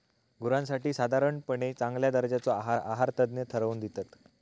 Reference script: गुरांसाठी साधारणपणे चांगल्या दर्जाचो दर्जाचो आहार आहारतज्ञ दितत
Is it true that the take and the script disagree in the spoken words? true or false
true